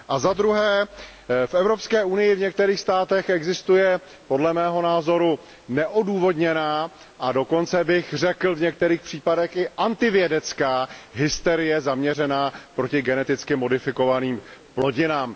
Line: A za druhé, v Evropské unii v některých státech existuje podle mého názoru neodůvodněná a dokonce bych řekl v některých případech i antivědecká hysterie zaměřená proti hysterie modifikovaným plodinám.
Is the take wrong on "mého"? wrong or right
right